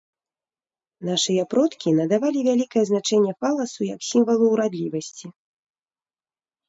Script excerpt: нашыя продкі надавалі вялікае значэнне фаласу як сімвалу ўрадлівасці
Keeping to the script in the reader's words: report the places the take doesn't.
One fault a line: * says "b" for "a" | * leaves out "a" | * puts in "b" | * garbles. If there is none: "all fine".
all fine